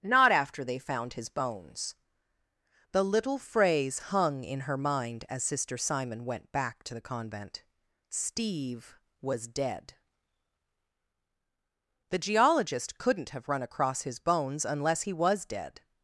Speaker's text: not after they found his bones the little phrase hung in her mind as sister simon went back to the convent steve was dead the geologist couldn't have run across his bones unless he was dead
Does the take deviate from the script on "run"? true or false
false